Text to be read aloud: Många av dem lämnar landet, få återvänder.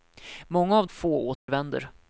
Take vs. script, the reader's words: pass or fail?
fail